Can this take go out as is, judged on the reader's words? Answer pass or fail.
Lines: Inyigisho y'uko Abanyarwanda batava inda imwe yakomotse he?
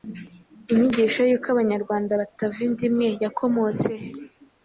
pass